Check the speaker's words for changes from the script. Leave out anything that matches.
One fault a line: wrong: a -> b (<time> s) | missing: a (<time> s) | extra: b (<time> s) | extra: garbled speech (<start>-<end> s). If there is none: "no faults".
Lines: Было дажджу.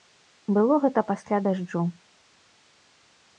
extra: гэта пасля (0.8 s)